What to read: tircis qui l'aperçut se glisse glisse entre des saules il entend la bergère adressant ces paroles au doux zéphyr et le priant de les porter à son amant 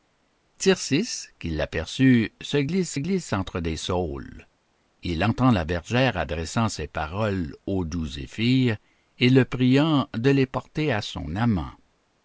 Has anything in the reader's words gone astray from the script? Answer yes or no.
no